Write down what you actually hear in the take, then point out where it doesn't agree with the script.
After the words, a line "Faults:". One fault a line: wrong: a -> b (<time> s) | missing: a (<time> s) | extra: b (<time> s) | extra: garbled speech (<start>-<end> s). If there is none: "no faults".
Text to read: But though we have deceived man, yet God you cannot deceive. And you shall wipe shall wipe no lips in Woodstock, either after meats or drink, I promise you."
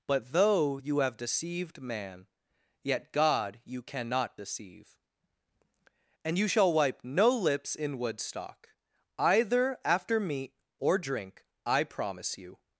But though you have deceived man, yet God you cannot deceive. And you shall wipe no lips in Woodstock, either after meat or drink, I promise you."
Faults:
wrong: we -> you (0.7 s)
missing: shall wipe (7.0 s)
wrong: meats -> meat (10.2 s)